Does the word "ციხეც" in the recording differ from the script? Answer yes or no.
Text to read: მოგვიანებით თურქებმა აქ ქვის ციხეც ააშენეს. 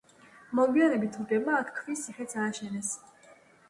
no